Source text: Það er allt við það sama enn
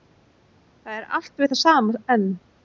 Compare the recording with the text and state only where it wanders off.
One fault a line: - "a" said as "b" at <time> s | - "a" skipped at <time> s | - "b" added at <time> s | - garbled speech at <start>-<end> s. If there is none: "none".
none